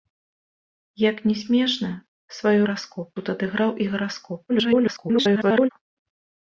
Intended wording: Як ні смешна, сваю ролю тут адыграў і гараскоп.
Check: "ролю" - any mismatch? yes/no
yes